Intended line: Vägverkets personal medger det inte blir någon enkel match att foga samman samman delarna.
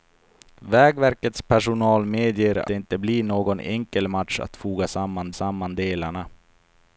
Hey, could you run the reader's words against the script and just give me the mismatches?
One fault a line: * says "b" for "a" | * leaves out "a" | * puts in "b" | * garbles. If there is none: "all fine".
all fine